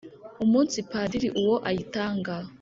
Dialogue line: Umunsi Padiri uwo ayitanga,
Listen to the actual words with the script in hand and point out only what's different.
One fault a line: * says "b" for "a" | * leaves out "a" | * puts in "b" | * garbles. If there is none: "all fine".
all fine